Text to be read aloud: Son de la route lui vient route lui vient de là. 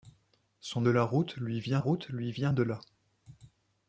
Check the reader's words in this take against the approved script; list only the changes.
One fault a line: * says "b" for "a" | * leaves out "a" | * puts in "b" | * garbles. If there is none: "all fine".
all fine